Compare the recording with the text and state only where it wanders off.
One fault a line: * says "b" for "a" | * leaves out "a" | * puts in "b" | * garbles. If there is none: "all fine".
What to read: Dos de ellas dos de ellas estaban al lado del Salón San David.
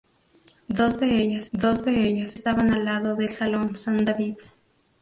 all fine